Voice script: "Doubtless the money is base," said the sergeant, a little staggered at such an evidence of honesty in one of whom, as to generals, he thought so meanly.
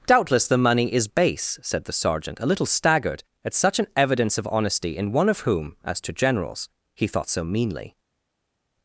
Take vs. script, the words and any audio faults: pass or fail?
pass